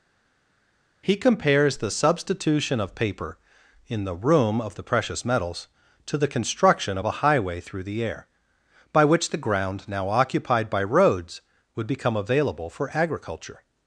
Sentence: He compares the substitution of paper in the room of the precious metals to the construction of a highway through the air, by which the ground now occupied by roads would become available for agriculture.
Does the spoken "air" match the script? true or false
true